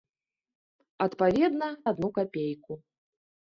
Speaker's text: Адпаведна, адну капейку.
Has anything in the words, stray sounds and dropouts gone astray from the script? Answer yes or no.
no